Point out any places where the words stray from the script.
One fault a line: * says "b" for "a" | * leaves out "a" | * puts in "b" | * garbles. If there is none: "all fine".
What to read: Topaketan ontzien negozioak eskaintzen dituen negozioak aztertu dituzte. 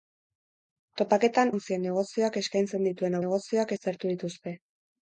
all fine